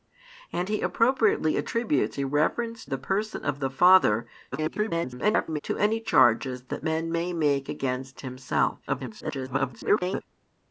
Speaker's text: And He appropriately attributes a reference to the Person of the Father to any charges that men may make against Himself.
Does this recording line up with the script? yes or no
no